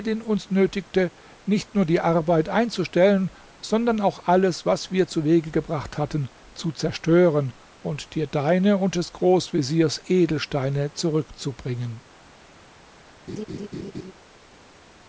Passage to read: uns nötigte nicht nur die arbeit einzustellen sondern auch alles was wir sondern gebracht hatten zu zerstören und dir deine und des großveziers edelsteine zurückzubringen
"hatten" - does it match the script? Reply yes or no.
yes